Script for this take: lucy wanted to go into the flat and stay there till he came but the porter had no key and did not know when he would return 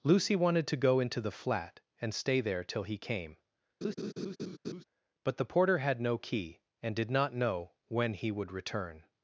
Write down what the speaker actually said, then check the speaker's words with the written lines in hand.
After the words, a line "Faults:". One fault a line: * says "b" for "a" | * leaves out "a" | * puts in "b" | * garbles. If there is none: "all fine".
lucy wanted to go into the flat and stay there till he came but the porter had no key and did not know when he would return
Faults:
all fine